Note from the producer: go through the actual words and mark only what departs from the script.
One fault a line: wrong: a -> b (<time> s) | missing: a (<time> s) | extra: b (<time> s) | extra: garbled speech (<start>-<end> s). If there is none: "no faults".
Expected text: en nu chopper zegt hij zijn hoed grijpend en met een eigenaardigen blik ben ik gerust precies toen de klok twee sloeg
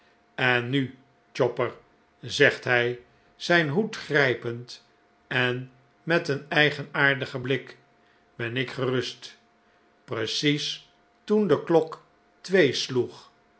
no faults